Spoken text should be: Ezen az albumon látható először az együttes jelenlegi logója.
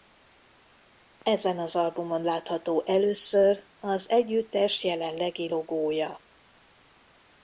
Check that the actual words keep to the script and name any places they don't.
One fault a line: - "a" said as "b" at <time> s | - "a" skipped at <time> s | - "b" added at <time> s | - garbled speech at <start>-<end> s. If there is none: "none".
none